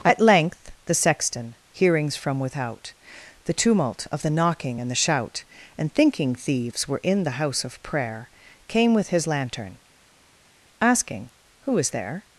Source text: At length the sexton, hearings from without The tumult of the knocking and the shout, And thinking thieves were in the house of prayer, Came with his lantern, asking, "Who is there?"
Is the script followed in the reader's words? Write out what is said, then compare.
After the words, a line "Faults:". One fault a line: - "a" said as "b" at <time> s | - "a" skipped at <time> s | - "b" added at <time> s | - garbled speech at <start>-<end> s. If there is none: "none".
At length the sexton, hearings from without The tumult of the knocking and the shout, And thinking thieves were in the house of prayer, Came with his lantern, asking, "Who is there?"
Faults:
none